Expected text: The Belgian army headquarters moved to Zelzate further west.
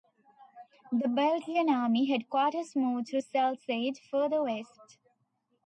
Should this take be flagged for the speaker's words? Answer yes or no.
no